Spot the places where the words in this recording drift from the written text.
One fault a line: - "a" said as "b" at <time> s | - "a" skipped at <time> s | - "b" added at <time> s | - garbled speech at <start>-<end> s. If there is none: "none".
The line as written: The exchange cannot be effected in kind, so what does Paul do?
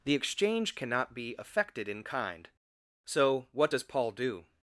none